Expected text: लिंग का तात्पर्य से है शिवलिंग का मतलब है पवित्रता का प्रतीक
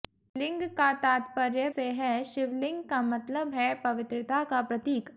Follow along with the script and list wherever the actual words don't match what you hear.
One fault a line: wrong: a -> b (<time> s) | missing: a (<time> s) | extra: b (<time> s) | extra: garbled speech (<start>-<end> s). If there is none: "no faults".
no faults